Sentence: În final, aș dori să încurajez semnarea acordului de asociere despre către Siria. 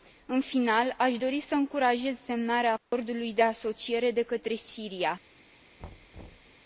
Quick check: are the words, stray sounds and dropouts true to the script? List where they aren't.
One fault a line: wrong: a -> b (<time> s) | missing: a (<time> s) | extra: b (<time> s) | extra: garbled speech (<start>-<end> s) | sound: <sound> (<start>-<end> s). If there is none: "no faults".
sound: dropout (2.8-2.9 s)
wrong: despre -> de (4.1 s)
sound: thud (5.8-6.6 s)